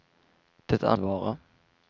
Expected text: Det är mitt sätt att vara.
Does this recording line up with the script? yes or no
no